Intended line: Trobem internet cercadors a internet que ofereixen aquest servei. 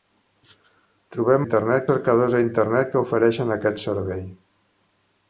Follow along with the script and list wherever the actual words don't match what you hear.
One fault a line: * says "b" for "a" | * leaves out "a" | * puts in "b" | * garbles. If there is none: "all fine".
all fine